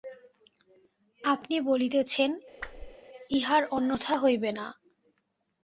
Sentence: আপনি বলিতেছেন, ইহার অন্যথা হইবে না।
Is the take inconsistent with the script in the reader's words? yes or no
no